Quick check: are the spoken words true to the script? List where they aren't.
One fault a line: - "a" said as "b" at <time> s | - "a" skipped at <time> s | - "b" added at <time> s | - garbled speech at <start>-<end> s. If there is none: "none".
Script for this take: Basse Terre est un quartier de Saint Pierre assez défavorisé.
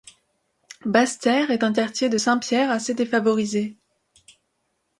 none